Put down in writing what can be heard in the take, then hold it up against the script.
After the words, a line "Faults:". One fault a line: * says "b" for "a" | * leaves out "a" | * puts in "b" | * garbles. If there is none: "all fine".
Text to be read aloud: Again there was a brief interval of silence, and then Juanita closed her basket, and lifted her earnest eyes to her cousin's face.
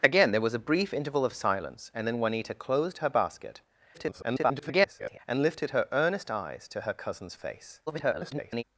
Again there was a brief interval of silence, and then Juanita closed her basket, [garbled] and lifted her earnest eyes to her cousin's face. [garbled]
Faults:
* garbles
* garbles